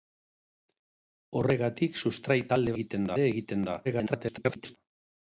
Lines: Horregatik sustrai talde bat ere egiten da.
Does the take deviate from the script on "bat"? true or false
true